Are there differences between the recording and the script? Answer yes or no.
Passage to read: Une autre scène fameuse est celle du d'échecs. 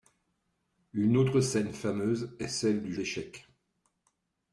no